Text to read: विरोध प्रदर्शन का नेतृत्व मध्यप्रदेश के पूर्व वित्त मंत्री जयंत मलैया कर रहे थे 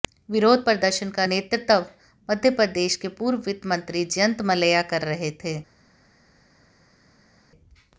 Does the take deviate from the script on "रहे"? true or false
false